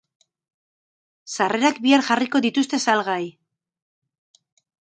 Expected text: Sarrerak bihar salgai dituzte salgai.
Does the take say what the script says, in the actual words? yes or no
no